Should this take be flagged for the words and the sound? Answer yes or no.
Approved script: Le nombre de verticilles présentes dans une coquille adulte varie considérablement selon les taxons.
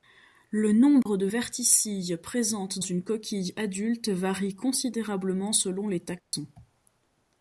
yes